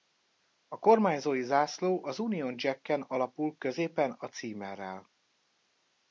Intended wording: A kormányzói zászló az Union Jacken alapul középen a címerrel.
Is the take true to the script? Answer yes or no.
yes